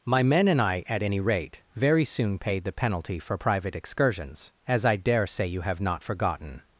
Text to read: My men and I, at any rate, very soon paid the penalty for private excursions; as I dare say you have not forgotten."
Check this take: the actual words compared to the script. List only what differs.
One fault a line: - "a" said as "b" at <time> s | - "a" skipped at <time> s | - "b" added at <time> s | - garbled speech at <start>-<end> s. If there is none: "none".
none